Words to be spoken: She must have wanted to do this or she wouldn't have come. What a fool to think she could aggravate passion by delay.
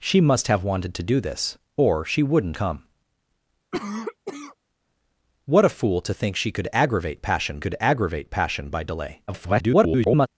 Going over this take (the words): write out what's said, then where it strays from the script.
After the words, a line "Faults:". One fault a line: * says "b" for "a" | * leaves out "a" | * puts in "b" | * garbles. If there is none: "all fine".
She must have wanted to do this or she wouldn't come. What a fool to think she could aggravate passion could aggravate passion by delay. [garbled]
Faults:
* leaves out "have"
* puts in "could aggravate passion"
* garbles